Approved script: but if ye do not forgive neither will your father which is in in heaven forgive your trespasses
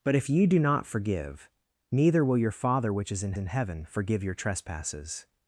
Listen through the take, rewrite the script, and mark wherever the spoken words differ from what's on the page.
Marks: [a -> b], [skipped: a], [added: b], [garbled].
but if ye do not forgive neither will your father which is in in heaven forgive your trespasses